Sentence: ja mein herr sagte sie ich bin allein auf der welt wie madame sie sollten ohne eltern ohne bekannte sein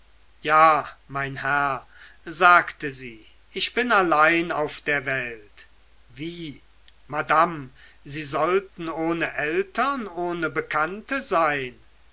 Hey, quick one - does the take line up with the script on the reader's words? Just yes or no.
yes